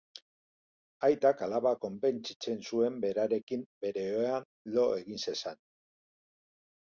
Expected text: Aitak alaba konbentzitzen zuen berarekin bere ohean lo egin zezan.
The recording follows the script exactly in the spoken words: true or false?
true